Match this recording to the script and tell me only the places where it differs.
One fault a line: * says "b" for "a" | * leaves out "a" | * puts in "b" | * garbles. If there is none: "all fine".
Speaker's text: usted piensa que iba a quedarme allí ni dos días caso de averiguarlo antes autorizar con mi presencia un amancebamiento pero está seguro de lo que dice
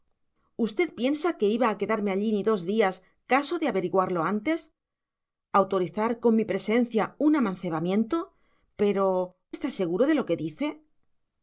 all fine